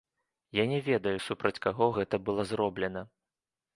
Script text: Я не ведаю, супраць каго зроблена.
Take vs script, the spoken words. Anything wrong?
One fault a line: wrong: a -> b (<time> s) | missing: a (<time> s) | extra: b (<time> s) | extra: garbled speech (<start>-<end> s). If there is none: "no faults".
extra: гэта было (2.0 s)